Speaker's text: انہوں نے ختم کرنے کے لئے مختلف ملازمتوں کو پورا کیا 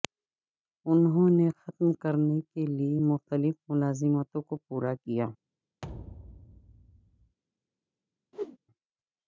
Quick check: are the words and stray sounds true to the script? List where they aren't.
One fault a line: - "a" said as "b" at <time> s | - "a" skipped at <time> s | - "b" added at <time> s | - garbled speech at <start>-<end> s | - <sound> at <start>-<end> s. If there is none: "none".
- thud at 5.8-7.4 s
- whoosh at 8.3-8.6 s